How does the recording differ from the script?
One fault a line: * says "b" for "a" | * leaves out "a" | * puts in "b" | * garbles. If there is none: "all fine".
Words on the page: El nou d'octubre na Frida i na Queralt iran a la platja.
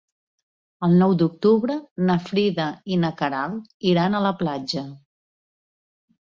all fine